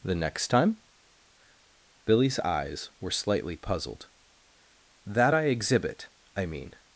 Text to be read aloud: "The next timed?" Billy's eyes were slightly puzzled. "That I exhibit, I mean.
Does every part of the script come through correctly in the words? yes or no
no